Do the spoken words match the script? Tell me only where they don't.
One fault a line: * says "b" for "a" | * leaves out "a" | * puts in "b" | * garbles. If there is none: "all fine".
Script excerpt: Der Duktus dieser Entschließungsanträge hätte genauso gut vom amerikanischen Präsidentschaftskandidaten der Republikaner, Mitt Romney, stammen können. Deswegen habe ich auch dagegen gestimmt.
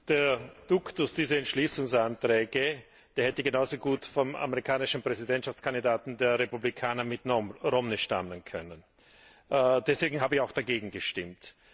all fine